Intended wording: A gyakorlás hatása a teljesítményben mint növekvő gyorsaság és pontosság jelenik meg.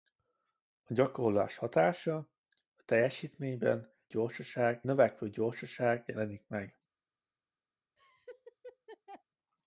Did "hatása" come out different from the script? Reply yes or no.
no